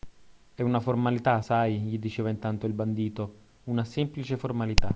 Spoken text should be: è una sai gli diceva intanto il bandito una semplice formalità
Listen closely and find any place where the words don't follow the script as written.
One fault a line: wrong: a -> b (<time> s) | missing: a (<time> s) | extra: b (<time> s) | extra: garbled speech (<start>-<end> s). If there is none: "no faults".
extra: formalità (0.8 s)